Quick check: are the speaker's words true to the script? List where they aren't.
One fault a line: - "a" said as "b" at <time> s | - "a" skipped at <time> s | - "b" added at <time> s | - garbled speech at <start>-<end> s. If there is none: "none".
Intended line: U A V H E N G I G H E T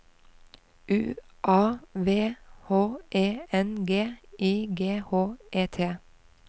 none